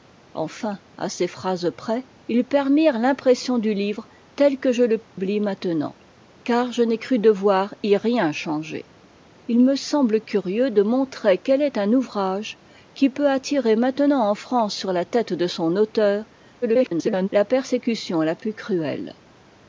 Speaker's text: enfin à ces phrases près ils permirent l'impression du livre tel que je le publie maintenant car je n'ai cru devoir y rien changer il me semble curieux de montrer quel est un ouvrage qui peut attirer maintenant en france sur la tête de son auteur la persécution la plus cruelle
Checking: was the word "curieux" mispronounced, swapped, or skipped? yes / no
no